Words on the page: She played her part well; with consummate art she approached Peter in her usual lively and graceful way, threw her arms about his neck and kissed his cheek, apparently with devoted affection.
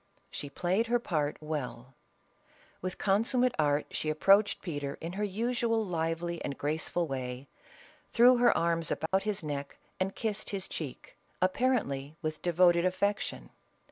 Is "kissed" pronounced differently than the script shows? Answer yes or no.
no